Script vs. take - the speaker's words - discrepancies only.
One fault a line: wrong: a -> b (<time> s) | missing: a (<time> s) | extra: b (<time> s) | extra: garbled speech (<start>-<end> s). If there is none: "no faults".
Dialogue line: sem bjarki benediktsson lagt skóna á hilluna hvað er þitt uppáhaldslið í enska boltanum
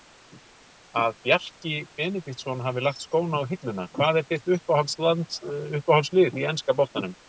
wrong: sem -> að (1.0 s)
extra: hafi (2.7 s)